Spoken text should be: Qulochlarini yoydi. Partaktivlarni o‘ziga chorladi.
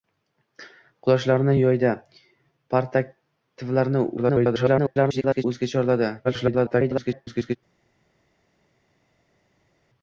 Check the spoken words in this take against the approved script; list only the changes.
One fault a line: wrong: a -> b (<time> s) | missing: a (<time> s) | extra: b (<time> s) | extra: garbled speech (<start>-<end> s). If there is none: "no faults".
extra: garbled speech (4.2-5.4 s)
extra: garbled speech (6.2-7.6 s)